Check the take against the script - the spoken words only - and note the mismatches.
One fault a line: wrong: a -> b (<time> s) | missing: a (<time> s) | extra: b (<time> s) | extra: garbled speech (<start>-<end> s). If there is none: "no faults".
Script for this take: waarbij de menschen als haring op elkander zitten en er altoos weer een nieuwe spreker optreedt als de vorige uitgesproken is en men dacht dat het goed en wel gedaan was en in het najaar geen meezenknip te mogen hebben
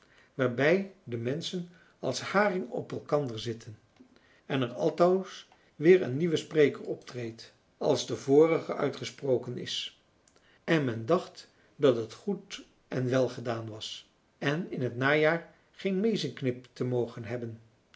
no faults